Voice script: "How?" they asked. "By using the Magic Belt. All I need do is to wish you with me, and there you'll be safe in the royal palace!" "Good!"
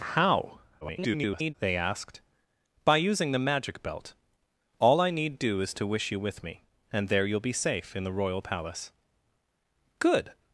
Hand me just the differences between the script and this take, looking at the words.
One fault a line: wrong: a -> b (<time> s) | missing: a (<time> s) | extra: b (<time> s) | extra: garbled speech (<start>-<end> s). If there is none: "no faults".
extra: garbled speech (0.8-1.5 s)